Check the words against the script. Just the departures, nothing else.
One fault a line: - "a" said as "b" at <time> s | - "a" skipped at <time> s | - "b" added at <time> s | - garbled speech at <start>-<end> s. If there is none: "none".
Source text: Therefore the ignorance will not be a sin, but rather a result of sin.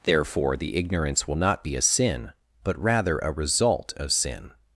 none